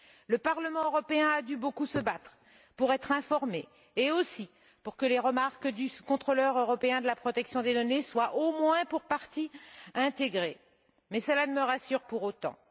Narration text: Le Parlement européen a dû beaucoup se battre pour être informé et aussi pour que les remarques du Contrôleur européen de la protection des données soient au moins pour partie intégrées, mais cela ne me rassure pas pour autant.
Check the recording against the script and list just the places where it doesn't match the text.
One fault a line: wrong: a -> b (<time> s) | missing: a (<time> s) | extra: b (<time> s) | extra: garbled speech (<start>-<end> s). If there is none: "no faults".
missing: pas (12.0 s)